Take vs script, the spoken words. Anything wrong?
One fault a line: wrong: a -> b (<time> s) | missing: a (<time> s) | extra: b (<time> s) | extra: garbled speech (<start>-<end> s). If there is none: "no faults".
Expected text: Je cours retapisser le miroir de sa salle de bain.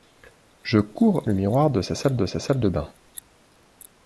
missing: retapisser (1.2 s)
extra: sa salle de (2.2 s)